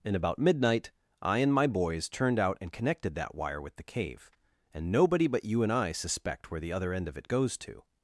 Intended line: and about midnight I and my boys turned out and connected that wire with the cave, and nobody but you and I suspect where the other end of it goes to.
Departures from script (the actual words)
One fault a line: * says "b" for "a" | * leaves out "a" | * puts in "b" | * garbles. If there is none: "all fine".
all fine